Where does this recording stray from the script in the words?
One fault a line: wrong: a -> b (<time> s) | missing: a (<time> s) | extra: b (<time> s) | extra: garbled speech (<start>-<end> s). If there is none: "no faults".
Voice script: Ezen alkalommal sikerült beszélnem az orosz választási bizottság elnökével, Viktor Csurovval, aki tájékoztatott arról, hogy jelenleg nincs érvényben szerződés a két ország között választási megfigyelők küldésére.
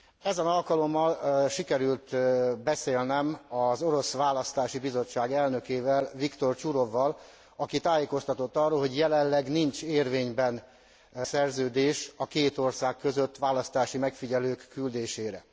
no faults